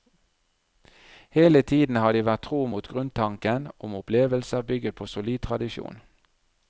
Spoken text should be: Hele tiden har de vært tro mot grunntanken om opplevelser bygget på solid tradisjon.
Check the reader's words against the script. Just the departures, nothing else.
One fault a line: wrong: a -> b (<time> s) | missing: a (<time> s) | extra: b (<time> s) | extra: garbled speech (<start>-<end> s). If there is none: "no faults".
no faults